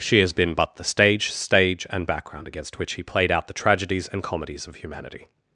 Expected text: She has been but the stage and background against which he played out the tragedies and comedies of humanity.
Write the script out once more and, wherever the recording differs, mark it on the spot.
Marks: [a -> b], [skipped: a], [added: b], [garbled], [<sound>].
She has been but the stage [added: stage] and background against which he played out the tragedies and comedies of humanity.